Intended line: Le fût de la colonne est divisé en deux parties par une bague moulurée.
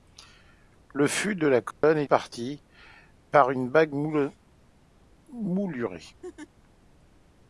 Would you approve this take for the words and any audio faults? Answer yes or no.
no